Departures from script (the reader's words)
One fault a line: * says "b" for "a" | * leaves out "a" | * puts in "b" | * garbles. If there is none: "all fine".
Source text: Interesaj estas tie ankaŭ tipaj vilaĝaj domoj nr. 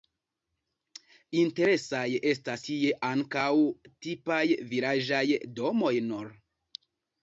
all fine